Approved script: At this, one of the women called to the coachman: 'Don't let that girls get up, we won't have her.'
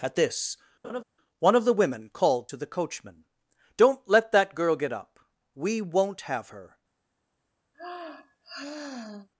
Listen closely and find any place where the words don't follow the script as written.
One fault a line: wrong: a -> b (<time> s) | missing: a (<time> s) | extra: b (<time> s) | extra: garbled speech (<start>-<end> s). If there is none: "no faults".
wrong: girls -> girl (4.5 s)